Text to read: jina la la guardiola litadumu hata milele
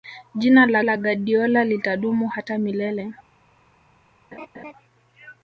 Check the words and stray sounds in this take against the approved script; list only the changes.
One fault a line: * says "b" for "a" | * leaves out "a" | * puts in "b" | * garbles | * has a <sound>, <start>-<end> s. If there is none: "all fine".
* has a laugh, 4.3-4.7 s